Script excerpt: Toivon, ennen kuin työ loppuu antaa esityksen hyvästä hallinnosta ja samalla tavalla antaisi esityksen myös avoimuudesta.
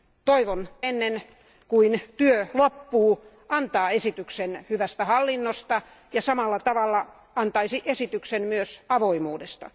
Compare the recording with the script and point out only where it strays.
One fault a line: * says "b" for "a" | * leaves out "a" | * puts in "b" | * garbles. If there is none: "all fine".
all fine